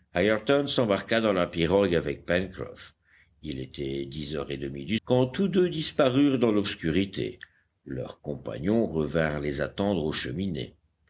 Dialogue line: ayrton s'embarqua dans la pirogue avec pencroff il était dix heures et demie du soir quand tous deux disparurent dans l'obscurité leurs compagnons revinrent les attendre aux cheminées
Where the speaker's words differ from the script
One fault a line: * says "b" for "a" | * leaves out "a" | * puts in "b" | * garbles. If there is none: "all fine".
* leaves out "soir"